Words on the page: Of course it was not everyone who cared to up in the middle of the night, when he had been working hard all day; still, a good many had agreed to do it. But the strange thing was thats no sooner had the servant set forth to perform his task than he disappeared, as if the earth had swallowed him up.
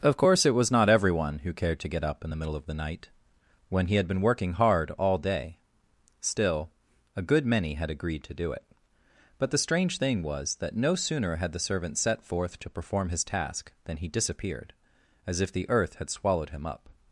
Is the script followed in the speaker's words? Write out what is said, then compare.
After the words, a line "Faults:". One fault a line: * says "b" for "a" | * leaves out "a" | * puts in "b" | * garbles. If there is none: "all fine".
Of course it was not everyone who cared to get up in the middle of the night, when he had been working hard all day; still, a good many had agreed to do it. But the strange thing was that no sooner had the servant set forth to perform his task than he disappeared, as if the earth had swallowed him up.
Faults:
* puts in "get"
* says "that" for "thats"